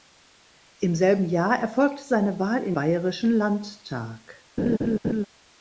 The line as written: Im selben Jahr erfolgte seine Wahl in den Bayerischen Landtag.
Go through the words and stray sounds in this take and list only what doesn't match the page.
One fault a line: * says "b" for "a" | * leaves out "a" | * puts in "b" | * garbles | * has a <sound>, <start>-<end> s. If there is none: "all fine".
* leaves out "den"
* has a laugh, 4.6-5.3 s